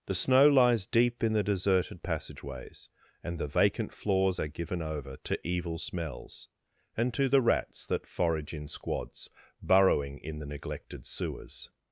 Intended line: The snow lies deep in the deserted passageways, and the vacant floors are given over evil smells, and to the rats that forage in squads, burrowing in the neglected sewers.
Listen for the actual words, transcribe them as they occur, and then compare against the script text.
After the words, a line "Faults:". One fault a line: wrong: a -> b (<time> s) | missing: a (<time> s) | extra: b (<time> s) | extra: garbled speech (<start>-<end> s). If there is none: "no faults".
The snow lies deep in the deserted passageways, and the vacant floors are given over to evil smells, and to the rats that forage in squads, burrowing in the neglected sewers.
Faults:
extra: to (5.2 s)